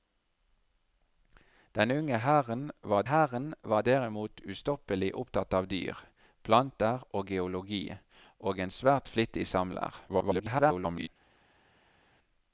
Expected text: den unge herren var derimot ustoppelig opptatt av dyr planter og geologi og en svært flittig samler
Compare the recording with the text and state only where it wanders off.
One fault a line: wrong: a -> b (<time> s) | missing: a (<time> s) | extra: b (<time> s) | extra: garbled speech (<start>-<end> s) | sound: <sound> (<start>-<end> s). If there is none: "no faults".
extra: herren var (3.0 s)
extra: garbled speech (10.1-11.1 s)